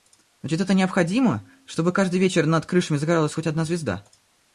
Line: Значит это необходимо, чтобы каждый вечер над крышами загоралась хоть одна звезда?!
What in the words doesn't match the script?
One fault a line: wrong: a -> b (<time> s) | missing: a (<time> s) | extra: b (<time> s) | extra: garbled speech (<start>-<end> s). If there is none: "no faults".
no faults